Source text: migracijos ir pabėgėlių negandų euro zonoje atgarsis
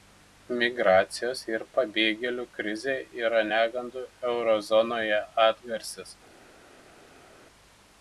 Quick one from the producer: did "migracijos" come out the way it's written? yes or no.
yes